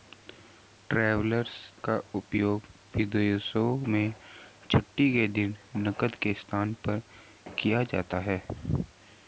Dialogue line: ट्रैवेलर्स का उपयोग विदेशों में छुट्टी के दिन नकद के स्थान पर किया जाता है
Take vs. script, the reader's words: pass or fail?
pass